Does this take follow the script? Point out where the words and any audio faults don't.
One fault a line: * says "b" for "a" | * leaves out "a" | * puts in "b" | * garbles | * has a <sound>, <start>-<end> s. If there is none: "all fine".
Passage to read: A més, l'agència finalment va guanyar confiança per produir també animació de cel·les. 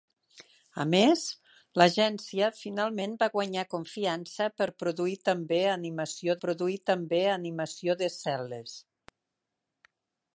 * puts in "produir també animació"